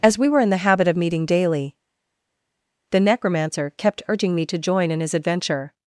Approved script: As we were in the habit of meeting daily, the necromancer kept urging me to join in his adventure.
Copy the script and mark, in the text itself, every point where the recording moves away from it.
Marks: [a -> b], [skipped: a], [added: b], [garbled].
As we were in the habit of meeting daily, the necromancer kept urging me to join in his adventure.